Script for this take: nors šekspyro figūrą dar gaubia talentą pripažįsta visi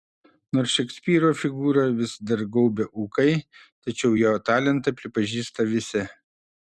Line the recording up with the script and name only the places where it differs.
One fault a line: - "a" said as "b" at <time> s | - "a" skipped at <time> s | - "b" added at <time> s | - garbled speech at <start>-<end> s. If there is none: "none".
- "vis" added at 2.0 s
- "ūkai tačiau jo" added at 3.0 s